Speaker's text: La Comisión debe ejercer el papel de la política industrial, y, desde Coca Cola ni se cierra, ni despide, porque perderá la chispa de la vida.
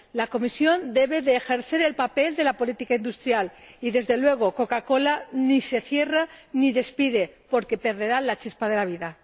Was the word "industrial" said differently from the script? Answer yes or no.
no